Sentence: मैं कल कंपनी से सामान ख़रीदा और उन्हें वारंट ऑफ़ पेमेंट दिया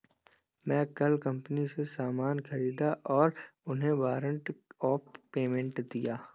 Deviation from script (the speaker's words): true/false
false